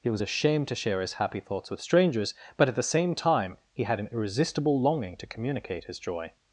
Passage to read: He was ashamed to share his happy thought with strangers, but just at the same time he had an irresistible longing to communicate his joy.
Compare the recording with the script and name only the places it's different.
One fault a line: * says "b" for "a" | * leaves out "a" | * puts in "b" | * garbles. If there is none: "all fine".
* says "thoughts" for "thought"
* leaves out "just"